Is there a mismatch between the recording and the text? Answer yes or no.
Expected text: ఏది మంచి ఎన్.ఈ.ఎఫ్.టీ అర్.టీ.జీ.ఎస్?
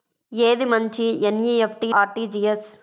no